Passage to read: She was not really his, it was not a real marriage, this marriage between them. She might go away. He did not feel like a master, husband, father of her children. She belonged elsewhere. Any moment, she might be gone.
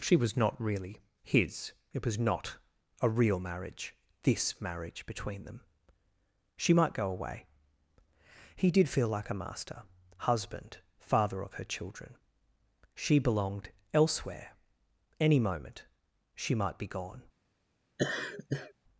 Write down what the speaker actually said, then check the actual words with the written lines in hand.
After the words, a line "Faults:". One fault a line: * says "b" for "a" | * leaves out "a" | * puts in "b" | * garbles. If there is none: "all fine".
She was not really his, it was not a real marriage, this marriage between them. She might go away. He did feel like a master, husband, father of her children. She belonged elsewhere. Any moment, she might be gone.
Faults:
* leaves out "not"